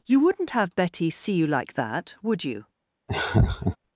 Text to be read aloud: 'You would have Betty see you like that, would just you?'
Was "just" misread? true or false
true